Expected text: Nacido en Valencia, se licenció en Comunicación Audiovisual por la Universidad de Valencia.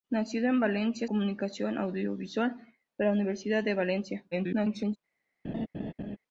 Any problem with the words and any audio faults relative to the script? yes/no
yes